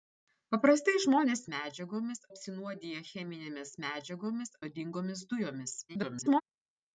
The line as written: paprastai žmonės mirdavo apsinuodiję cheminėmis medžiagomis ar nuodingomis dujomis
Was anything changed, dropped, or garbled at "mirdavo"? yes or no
yes